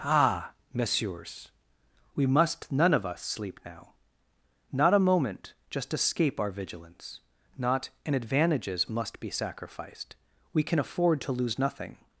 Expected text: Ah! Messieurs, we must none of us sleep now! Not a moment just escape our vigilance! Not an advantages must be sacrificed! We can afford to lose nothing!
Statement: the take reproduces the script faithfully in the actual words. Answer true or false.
true